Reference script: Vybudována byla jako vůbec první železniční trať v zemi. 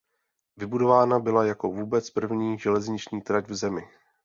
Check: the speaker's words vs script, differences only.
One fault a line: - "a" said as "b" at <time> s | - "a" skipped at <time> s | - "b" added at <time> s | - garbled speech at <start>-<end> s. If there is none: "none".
none